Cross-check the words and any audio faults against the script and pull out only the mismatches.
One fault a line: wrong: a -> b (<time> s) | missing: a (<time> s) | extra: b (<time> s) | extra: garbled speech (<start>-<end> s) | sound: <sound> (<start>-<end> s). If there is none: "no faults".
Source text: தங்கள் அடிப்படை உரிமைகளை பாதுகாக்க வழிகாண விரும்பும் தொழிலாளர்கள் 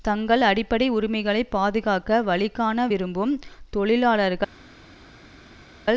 no faults